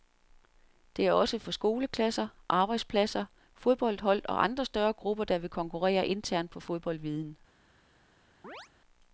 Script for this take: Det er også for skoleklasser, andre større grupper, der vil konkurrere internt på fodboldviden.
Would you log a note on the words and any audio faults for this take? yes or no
yes